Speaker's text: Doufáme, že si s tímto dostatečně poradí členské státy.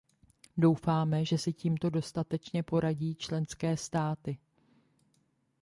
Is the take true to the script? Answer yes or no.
yes